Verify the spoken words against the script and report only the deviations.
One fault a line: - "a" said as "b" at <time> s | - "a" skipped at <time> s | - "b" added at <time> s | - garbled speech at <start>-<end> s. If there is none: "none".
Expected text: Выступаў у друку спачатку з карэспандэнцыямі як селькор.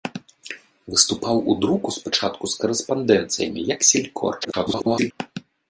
- garbled speech at 4.4-5.1 s